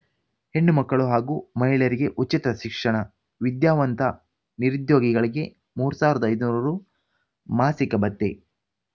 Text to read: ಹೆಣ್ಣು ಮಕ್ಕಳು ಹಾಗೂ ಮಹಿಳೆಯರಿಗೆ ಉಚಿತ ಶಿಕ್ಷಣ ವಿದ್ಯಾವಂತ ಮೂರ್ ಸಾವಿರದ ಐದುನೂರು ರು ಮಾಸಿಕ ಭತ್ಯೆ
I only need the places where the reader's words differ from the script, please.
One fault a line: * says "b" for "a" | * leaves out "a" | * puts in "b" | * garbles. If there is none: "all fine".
* puts in "ನಿರುದ್ಯೋಗಿಗಳಿಗೆ"